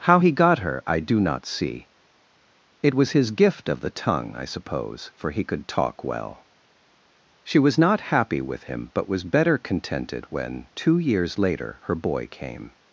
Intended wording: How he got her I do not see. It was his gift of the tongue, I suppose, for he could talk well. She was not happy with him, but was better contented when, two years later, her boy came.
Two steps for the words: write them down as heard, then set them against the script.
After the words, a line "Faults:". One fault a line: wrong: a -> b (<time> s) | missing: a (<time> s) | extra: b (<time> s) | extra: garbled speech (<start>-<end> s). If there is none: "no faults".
How he got her I do not see. It was his gift of the tongue, I suppose, for he could talk well. She was not happy with him, but was better contented when, two years later, her boy came.
Faults:
no faults